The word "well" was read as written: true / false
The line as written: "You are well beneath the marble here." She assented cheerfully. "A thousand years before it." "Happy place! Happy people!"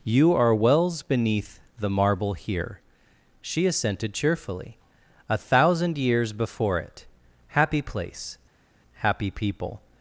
false